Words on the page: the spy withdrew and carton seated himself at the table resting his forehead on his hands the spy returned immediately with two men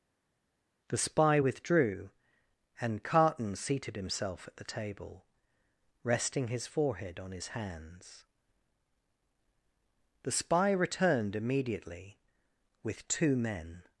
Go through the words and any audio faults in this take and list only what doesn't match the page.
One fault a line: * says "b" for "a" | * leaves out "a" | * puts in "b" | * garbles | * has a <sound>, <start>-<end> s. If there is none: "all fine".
all fine